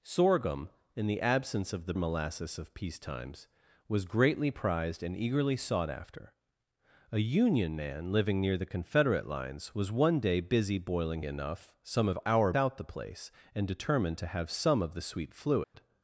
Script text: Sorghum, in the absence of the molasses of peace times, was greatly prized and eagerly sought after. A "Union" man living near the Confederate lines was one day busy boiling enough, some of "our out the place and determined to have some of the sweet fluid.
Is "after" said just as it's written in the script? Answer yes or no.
yes